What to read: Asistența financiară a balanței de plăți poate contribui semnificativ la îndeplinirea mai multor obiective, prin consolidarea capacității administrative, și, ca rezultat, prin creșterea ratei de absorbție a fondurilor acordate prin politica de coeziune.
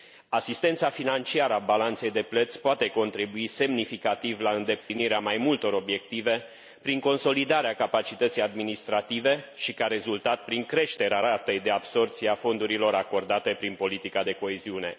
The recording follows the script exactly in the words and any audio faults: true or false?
false